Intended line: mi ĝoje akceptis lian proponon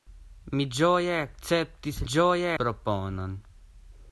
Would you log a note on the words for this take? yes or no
yes